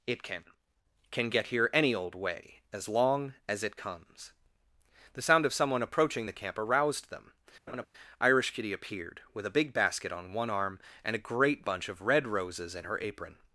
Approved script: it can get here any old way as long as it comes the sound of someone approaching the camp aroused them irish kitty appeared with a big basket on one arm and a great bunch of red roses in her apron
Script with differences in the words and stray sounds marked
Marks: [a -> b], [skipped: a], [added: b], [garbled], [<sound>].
it can [added: can] get here any old way as long as it comes the sound of someone approaching the camp aroused them [laugh] irish kitty appeared with a big basket on one arm and a great bunch of red roses in her apron